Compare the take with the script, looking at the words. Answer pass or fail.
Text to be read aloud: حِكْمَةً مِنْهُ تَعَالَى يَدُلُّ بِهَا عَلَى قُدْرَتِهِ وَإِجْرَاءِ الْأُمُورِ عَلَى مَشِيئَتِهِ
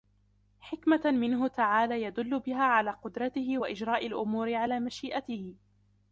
pass